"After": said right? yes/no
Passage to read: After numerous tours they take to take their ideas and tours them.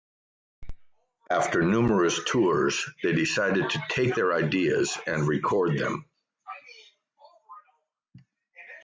yes